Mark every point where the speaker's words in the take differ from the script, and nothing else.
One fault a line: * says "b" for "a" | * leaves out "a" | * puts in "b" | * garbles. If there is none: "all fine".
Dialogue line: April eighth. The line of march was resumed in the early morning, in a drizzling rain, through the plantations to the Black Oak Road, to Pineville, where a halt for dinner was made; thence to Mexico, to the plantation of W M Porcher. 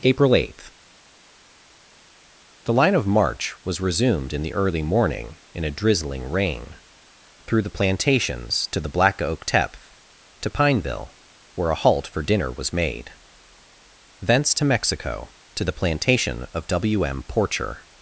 * says "Tepth" for "Road"